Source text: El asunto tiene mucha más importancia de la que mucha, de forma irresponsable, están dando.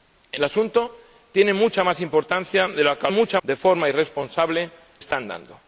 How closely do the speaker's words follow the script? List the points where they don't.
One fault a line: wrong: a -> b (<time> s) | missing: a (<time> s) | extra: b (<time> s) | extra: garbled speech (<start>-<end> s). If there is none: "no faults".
no faults